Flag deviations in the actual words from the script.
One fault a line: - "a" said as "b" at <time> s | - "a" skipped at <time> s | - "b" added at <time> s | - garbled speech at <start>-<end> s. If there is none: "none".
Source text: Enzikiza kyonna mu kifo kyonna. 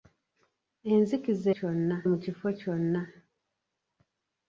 none